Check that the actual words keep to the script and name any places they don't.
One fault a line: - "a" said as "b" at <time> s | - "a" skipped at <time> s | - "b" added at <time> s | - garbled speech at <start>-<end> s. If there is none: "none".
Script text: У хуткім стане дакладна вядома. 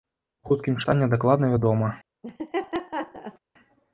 none